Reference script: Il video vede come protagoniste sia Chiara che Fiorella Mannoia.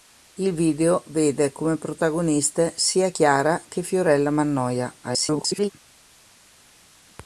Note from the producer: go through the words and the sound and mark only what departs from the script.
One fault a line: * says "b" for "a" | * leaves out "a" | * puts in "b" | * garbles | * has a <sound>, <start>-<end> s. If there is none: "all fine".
* garbles